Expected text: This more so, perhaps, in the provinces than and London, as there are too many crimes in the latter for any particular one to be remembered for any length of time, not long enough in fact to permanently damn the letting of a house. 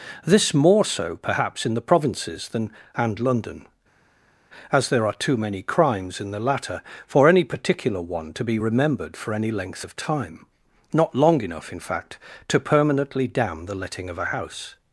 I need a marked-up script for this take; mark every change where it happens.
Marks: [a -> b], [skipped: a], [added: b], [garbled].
This more so, perhaps, in the provinces than and London, as there are too many crimes in the latter for any particular one to be remembered for any length of time, not long enough in fact to permanently damn the letting of a house.